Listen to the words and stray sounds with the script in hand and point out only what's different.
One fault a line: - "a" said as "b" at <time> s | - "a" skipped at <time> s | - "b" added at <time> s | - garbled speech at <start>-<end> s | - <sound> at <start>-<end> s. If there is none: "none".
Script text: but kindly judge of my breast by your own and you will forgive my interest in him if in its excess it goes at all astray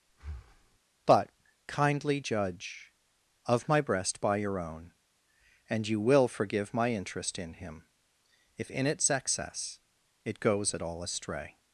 - breath at 0.1-0.8 s